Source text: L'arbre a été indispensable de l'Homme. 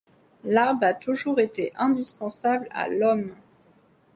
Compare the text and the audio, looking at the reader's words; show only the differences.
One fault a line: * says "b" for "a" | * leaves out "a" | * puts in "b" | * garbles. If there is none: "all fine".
* puts in "toujours"
* says "à" for "de"